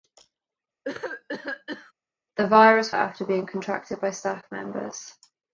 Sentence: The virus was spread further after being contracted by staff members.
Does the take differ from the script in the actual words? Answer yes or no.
yes